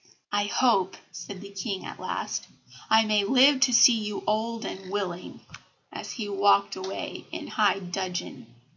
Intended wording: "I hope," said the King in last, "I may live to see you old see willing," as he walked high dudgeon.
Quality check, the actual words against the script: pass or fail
fail